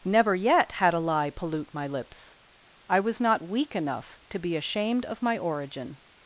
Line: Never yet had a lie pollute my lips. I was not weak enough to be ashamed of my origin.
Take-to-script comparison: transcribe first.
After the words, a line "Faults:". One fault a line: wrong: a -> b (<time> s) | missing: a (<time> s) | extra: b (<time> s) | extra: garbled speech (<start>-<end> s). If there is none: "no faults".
Never yet had a lie pollute my lips. I was not weak enough to be ashamed of my origin.
Faults:
no faults